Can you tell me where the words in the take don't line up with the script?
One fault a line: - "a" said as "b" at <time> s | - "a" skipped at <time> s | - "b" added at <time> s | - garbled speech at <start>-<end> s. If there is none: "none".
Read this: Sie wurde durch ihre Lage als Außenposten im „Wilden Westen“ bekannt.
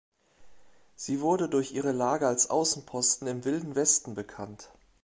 none